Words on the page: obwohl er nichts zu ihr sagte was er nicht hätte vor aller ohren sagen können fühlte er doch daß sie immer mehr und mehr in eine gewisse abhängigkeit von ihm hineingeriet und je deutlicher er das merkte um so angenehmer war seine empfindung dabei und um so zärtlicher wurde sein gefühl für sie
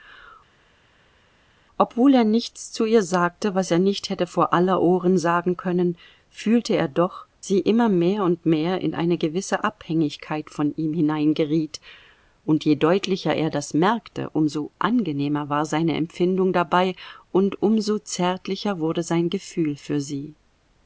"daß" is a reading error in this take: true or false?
true